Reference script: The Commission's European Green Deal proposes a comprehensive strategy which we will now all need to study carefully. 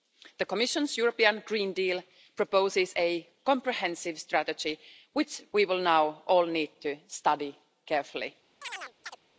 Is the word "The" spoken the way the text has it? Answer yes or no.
yes